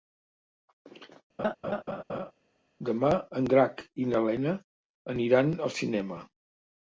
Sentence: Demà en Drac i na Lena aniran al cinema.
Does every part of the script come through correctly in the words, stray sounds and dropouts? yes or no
no